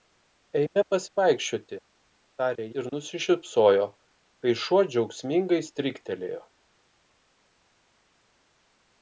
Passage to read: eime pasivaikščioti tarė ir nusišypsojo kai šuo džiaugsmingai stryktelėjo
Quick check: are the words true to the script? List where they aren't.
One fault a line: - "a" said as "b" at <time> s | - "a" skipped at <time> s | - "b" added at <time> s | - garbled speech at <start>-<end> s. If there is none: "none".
none